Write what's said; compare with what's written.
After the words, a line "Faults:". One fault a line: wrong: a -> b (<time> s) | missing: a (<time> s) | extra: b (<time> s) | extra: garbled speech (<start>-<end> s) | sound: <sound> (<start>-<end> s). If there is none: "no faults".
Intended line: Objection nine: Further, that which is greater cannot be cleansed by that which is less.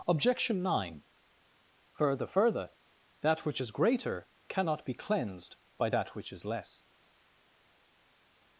Objection nine: Further Further, that which is greater cannot be cleansed by that which is less.
Faults:
extra: Further (2.2 s)